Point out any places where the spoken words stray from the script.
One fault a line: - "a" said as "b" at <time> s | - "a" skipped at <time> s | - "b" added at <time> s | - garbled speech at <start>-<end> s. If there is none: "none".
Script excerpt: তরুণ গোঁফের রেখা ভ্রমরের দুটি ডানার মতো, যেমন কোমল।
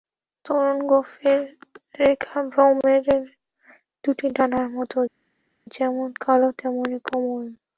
- "কালো তেমনি" added at 6.2 s